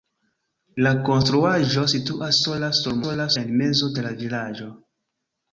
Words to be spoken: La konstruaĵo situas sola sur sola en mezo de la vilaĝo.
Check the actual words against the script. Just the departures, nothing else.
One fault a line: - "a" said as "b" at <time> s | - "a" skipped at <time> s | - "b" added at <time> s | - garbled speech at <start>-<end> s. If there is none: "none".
none